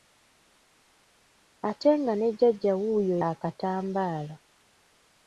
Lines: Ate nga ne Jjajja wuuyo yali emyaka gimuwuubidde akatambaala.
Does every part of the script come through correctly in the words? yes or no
no